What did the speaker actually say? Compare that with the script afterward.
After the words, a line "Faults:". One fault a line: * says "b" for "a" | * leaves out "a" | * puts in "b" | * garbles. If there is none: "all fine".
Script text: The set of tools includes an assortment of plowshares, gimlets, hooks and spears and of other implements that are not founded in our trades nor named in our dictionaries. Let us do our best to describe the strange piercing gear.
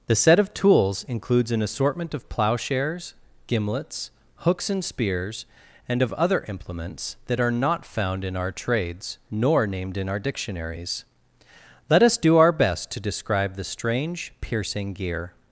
The set of tools includes an assortment of plowshares, gimlets, hooks and spears and of other implements that are not found in our trades nor named in our dictionaries. Let us do our best to describe the strange piercing gear.
Faults:
* says "found" for "founded"